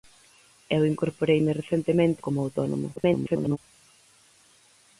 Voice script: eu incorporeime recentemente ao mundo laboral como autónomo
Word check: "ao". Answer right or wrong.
wrong